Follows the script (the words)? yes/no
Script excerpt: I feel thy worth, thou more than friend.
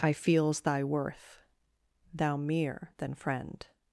no